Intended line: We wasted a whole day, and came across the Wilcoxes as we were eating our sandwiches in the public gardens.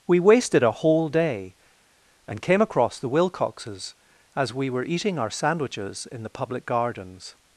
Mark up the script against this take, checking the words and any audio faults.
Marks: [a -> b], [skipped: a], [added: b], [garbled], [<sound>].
We wasted a whole day, and came across the Wilcoxes as we were eating our sandwiches in the public gardens.